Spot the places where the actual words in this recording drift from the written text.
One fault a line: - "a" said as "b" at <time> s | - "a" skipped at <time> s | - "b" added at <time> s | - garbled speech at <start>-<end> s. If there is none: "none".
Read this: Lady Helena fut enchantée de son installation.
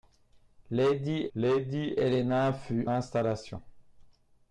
- "lady" added at 1.4 s
- "enchantée de son" skipped at 2.9 s